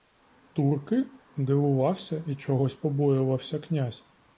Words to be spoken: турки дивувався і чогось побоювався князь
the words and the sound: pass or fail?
pass